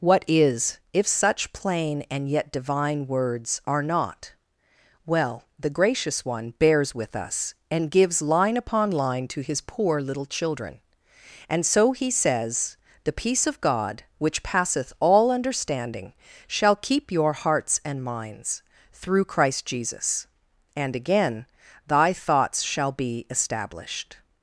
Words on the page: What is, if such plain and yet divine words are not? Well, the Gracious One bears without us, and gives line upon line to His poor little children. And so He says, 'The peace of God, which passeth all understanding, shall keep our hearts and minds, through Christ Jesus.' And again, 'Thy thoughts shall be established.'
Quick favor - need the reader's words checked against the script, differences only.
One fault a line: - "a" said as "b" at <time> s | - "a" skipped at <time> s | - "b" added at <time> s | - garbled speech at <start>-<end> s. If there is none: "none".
- "without" said as "with" at 6.9 s
- "our" said as "your" at 17.1 s